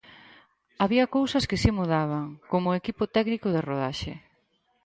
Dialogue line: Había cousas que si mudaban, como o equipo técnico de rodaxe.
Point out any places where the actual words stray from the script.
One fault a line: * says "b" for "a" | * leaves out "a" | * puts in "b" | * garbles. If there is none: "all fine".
all fine